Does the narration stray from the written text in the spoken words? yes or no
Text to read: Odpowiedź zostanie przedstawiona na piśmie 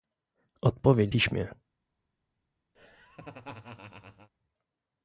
yes